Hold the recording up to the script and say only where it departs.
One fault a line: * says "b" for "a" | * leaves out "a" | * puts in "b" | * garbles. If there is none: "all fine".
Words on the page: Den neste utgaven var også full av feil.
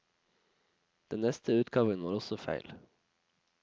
* leaves out "full"